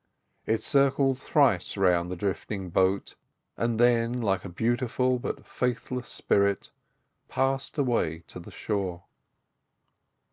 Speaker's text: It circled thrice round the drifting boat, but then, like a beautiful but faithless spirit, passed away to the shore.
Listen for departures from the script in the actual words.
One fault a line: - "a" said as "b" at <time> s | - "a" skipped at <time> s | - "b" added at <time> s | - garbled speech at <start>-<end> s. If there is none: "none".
- "but" said as "and" at 3.5 s